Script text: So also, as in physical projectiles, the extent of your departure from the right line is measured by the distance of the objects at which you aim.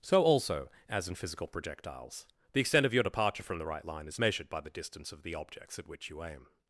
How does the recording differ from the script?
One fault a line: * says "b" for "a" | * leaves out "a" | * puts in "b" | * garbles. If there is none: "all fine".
all fine